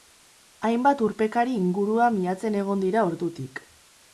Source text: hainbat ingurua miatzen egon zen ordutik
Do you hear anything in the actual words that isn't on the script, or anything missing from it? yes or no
yes